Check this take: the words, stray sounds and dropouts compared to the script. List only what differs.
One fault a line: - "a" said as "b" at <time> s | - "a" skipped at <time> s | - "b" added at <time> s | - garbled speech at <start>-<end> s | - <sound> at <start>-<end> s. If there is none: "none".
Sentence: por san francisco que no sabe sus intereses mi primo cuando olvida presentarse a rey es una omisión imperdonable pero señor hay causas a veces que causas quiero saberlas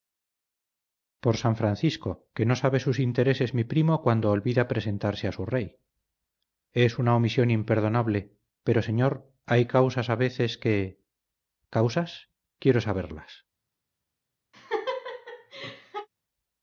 - "su" added at 5.3 s
- laugh at 14.5-16.1 s